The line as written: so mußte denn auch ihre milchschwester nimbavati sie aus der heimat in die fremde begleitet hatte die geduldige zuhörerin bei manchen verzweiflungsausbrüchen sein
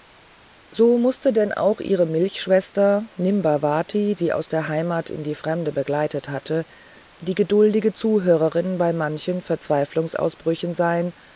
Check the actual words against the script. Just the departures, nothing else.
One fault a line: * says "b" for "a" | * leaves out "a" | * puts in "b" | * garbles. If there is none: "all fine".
all fine